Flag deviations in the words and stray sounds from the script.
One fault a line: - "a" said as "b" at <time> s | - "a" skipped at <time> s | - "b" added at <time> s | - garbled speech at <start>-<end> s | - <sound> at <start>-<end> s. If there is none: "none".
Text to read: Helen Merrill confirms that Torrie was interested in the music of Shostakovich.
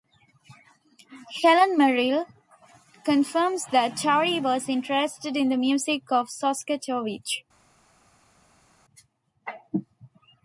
none